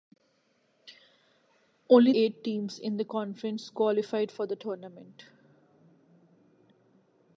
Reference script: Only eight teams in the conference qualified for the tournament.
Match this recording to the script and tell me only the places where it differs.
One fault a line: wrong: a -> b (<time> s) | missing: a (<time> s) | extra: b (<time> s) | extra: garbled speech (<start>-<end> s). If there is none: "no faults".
no faults